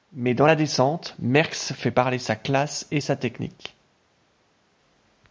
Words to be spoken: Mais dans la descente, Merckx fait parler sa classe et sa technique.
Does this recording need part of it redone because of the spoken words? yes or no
no